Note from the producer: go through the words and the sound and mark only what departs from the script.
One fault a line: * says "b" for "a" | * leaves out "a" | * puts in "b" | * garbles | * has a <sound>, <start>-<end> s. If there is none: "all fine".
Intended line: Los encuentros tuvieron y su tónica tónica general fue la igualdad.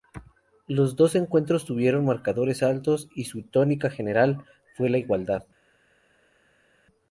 * puts in "dos"
* puts in "marcadores altos"
* leaves out "tónica"